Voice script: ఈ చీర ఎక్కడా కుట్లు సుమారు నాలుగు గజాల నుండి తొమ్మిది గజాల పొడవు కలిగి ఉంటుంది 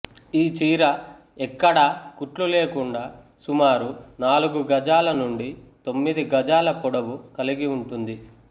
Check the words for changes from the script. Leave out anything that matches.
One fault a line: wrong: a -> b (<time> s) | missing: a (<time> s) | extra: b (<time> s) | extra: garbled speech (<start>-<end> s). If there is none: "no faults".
extra: లేకుండా (2.5 s)